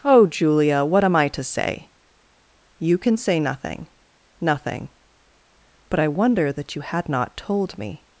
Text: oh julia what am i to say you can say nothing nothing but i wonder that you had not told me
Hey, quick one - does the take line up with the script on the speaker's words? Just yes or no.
yes